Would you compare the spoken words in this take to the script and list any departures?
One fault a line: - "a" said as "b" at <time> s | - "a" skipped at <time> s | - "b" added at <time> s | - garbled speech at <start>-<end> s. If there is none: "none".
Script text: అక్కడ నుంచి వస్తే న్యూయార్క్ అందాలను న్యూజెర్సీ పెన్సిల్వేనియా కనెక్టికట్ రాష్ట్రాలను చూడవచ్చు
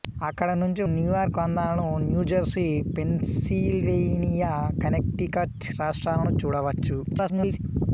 - "వస్తే" skipped at 0.8 s
- garbled speech at 7.0-7.6 s